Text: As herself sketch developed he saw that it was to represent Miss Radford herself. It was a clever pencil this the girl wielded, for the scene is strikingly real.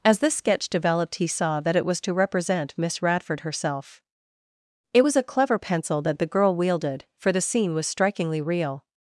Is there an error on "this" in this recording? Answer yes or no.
yes